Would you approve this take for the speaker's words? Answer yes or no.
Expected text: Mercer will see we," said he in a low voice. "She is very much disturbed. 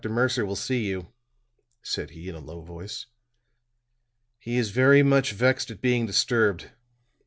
no